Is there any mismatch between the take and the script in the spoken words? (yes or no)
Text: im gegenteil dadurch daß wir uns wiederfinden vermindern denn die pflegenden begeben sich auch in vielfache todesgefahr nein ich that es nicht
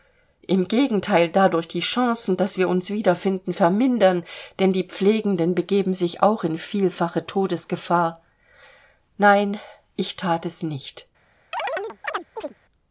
yes